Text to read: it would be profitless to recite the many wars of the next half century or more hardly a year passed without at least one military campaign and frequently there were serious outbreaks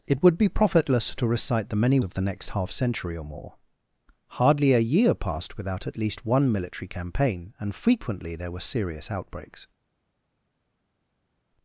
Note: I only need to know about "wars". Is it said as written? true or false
false